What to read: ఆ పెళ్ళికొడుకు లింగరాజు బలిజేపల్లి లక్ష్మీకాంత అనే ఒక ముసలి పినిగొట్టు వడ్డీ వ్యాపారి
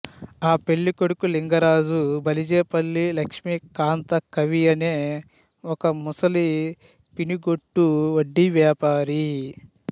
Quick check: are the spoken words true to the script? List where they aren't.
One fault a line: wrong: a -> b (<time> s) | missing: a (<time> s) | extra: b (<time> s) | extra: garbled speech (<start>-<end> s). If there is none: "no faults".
extra: కవి (4.3 s)